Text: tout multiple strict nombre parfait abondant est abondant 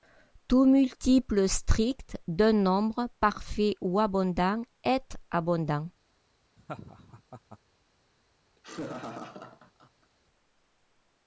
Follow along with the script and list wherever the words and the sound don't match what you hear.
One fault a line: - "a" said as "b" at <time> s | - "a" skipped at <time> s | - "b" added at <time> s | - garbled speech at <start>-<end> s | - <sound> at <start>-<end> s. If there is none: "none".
- "d'un" added at 2.3 s
- "ou" added at 3.8 s
- laugh at 6.6-7.6 s
- laugh at 8.6-10.1 s